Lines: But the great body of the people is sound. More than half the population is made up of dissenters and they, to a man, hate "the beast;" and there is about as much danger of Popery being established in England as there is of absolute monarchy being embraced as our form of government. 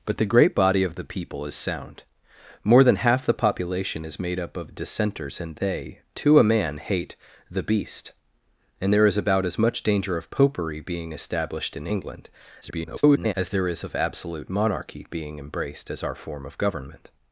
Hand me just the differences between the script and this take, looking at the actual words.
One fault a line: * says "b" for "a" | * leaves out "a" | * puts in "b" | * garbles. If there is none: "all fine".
* garbles